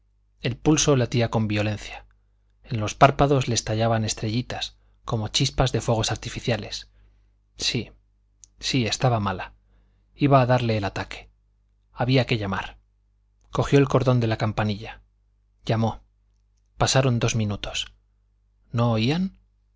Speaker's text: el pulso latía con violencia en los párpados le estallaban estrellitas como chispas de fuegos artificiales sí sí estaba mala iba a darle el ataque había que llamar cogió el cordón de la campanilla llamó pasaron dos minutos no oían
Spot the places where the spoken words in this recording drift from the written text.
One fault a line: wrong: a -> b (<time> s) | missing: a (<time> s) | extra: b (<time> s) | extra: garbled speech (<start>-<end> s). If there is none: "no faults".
no faults